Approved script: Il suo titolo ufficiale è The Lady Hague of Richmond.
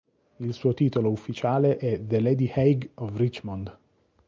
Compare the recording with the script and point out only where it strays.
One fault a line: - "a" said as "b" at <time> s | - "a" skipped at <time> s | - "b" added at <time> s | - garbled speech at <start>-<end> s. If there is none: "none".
none